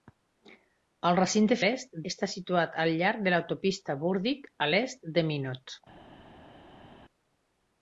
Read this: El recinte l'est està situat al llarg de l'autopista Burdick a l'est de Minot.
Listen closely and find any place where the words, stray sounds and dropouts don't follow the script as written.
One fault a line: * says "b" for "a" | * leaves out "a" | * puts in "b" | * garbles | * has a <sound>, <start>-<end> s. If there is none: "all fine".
all fine